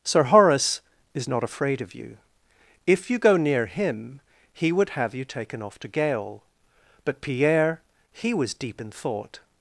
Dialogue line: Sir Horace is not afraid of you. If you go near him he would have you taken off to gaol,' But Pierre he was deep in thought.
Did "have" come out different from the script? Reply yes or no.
no